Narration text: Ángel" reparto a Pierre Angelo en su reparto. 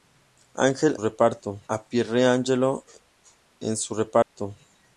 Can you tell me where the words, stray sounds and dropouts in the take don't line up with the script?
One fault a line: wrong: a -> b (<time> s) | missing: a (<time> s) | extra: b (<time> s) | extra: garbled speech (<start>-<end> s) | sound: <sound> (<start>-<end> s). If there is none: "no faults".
sound: dropout (4.2-4.4 s)